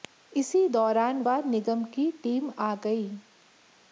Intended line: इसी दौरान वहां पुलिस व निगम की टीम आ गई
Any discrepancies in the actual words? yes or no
yes